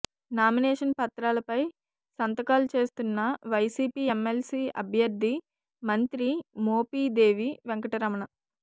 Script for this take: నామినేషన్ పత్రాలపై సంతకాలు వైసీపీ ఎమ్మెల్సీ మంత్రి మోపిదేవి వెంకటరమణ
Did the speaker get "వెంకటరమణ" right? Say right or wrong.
right